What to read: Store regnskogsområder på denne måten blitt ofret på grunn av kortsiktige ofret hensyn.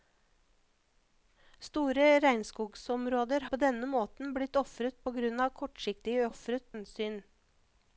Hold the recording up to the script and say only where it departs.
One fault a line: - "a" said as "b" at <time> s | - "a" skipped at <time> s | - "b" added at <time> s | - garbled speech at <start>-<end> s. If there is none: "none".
none